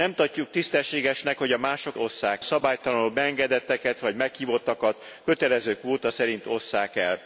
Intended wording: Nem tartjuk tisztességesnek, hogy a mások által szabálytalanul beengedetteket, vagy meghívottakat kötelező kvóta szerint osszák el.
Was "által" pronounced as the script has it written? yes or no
no